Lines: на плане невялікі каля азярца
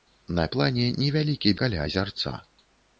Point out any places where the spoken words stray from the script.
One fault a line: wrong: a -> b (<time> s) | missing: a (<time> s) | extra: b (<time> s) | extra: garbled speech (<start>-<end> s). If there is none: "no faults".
no faults